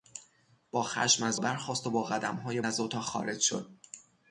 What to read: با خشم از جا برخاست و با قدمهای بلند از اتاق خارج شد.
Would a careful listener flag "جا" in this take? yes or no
yes